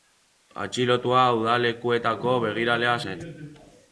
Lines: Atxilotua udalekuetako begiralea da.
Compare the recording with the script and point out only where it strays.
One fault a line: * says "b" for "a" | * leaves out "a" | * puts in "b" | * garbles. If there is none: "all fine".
* says "zen" for "da"